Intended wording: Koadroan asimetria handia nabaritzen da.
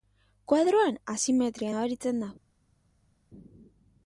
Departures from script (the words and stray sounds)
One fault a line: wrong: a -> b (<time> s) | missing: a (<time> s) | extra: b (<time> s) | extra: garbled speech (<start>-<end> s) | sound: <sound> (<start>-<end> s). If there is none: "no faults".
missing: handia (1.8 s)